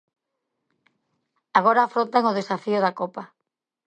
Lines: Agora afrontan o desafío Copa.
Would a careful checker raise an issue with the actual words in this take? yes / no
yes